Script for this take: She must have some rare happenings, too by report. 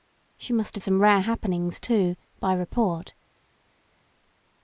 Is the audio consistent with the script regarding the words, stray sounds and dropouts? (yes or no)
yes